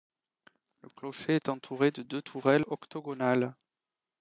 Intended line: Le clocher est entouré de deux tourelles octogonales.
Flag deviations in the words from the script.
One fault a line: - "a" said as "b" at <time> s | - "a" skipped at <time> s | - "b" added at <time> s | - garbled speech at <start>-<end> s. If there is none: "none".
none